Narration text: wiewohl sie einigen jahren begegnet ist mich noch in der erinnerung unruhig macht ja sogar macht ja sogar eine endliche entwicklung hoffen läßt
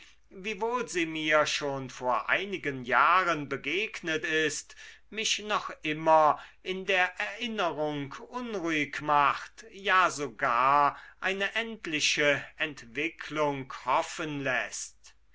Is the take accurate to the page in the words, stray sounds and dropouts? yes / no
no